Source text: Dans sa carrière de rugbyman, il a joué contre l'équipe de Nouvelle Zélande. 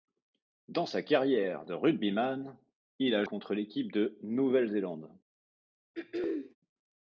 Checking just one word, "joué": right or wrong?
wrong